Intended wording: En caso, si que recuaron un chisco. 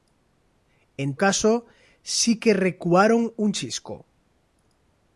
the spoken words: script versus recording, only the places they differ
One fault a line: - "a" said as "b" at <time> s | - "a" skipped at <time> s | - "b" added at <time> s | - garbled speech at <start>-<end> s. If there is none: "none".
none